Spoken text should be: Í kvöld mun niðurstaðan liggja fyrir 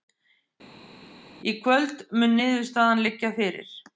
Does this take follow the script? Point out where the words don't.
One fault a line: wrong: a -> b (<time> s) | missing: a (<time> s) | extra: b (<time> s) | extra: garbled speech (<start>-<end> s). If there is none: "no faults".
no faults